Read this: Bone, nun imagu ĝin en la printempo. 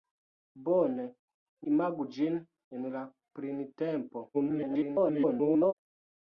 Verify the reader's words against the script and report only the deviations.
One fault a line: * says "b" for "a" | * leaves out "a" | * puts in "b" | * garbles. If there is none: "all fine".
* leaves out "nun"
* garbles